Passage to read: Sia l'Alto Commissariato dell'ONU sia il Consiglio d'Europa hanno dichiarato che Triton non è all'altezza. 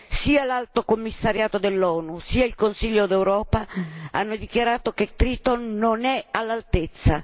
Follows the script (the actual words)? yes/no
yes